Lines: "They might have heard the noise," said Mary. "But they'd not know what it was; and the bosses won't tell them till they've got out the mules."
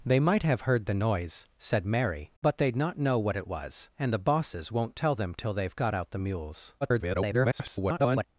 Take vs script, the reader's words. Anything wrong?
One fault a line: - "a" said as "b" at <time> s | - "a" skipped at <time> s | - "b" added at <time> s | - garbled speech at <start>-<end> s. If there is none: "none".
- garbled speech at 6.8-8.2 s